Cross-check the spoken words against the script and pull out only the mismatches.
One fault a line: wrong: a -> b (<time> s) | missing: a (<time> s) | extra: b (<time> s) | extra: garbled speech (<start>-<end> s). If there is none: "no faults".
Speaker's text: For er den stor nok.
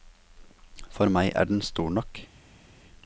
extra: meg (1.1 s)